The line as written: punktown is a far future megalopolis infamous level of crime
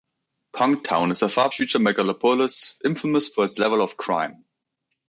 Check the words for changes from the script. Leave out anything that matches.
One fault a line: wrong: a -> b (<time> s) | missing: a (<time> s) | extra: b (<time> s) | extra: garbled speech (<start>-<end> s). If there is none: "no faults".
extra: for its (3.3 s)